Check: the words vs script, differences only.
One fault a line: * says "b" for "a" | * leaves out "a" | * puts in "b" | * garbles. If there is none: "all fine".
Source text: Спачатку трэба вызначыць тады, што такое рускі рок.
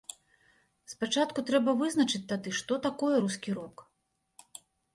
all fine